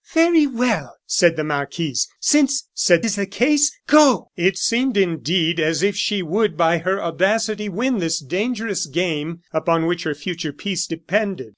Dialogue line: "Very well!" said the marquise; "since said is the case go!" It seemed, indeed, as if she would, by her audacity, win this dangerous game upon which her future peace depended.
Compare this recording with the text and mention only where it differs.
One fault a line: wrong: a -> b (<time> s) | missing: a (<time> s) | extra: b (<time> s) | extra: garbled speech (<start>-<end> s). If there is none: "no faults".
no faults